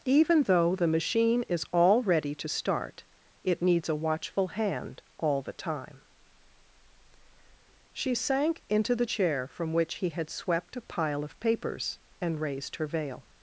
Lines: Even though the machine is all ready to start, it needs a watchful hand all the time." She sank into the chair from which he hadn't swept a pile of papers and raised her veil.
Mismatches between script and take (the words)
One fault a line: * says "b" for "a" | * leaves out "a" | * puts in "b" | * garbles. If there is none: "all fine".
* says "had" for "hadn't"